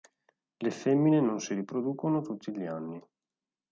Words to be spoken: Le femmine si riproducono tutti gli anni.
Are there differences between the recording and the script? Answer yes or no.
yes